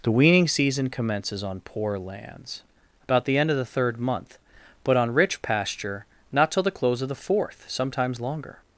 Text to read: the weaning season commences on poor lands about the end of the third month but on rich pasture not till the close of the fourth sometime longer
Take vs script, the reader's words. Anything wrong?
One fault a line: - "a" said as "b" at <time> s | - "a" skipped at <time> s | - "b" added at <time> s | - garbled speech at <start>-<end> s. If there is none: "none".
- "sometime" said as "sometimes" at 7.7 s